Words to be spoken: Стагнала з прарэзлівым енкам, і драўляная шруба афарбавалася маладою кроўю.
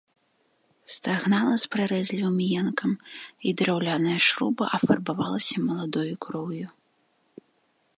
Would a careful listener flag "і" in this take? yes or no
no